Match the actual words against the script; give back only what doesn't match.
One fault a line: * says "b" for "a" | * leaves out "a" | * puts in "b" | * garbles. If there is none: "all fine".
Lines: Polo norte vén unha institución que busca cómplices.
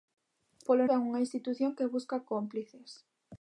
* leaves out "norte"